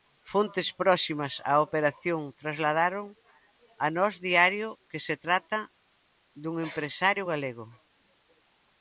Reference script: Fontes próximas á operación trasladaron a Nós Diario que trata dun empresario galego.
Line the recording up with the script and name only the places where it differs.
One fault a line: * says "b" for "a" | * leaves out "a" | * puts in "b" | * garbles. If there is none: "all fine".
* puts in "se"